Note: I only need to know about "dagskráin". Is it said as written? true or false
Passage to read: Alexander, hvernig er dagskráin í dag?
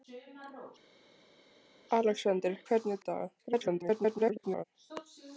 false